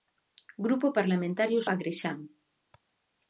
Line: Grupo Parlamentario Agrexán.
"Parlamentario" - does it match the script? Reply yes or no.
yes